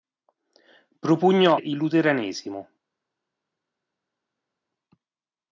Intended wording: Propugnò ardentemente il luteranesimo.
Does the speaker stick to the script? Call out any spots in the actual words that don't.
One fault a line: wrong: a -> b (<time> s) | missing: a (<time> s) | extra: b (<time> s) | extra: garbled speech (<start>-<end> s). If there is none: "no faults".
missing: ardentemente (1.6 s)